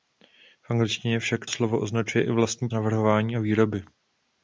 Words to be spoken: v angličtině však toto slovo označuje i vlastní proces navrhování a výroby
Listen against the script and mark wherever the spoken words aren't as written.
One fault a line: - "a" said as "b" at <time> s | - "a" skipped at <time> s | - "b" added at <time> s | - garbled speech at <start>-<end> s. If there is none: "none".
- "toto" skipped at 1.5 s
- "proces" skipped at 2.7 s